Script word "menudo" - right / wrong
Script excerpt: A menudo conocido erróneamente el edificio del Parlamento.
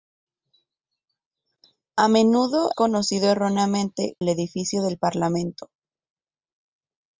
right